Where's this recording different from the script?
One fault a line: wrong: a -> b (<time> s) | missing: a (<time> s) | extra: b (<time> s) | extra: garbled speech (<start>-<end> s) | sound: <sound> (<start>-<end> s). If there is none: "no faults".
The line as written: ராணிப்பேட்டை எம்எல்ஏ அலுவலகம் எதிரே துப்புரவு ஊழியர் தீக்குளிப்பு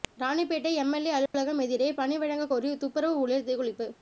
sound: dropout (1.3-1.3 s)
extra: பணி வழங்க கோரி (1.9 s)